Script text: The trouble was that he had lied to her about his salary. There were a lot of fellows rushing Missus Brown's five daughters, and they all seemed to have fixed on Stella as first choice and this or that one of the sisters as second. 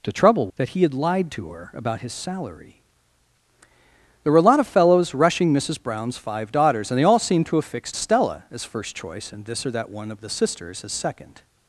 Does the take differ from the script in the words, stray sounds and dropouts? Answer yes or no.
yes